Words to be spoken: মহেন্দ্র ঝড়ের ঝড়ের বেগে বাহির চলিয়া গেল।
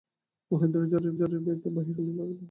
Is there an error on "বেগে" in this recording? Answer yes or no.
no